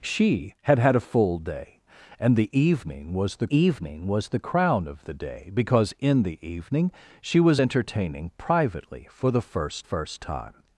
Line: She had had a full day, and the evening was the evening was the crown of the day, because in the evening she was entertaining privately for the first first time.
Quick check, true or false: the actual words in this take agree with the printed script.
true